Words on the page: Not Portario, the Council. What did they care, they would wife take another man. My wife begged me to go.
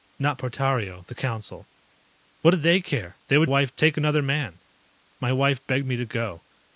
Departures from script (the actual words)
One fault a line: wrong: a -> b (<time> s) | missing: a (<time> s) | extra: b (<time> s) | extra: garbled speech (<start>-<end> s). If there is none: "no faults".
no faults